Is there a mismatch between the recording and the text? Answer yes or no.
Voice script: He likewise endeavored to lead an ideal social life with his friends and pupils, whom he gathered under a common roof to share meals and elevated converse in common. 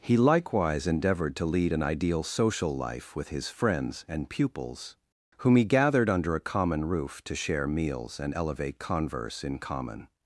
yes